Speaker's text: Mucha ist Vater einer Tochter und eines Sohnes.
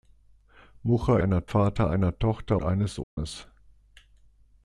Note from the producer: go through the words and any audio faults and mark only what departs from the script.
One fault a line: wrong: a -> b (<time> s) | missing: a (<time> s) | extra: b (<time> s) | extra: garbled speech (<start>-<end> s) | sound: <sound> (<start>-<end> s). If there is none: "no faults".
wrong: ist -> einer (1.2 s)
missing: und (2.6 s)
sound: dropout (3.0-3.2 s)